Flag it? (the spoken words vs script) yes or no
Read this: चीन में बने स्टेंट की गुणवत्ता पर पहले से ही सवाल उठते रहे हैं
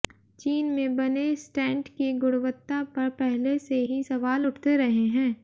no